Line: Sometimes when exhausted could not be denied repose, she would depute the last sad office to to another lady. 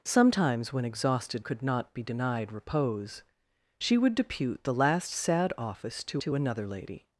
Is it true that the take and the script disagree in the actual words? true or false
false